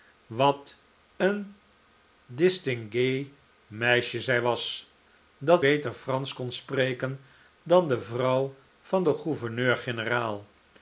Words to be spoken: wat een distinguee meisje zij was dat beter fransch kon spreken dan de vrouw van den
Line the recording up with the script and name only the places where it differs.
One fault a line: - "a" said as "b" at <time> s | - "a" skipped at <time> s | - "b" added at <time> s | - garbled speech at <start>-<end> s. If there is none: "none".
none